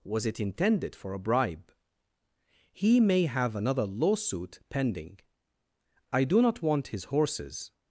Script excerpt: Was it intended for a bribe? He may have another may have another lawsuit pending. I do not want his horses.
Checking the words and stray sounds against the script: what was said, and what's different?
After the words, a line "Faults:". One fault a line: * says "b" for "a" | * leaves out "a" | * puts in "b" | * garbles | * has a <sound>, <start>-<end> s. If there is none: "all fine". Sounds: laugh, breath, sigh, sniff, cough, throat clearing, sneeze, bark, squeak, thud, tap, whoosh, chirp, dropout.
Was it intended for a bribe? He may have another lawsuit pending. I do not want his horses.
Faults:
* leaves out "may have another"